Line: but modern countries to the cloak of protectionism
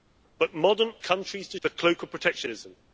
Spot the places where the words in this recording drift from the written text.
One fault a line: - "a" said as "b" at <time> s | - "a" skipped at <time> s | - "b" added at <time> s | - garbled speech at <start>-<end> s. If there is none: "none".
none